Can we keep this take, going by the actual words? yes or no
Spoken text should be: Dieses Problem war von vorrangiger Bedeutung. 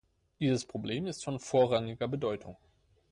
no